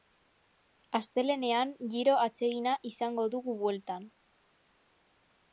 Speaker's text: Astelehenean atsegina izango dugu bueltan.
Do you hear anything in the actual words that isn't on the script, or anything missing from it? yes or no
yes